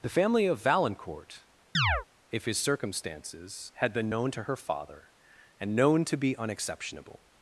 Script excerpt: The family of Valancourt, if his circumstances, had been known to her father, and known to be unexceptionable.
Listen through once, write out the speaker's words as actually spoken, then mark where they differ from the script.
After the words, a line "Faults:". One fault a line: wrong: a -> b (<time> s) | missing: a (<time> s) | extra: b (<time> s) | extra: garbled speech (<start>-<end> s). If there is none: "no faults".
The family of Valancourt, if his circumstances, had been known to her father, and known to be unexceptionable.
Faults:
no faults